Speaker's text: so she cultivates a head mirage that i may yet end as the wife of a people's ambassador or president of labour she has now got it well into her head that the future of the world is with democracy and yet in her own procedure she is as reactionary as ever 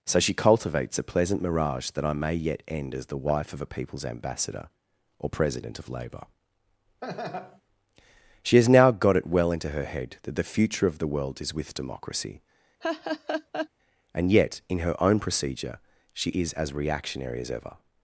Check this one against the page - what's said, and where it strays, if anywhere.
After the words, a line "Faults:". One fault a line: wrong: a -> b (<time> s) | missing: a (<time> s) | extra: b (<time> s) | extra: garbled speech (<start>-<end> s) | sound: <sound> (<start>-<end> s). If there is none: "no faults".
so she cultivates a pleasant mirage that i may yet end as the wife of a people's ambassador or president of labour she has now got it well into her head that the future of the world is with democracy and yet in her own procedure she is as reactionary as ever
Faults:
wrong: head -> pleasant (1.0 s)
sound: laugh (7.0-7.6 s)
sound: laugh (12.8-13.7 s)